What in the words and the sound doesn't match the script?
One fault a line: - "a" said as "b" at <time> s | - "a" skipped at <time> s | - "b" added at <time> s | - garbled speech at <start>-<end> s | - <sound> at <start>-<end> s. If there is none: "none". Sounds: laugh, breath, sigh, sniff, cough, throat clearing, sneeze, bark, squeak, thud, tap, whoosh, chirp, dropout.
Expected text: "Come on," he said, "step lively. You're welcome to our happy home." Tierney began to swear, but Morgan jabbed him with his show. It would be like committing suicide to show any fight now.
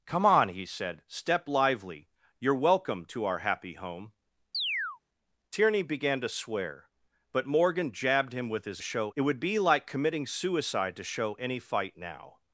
- chirp at 4.5-5.0 s